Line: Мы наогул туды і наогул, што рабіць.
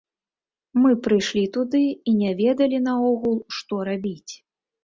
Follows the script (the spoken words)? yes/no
no